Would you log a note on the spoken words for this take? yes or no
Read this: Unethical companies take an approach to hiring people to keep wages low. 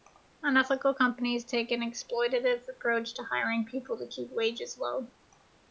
yes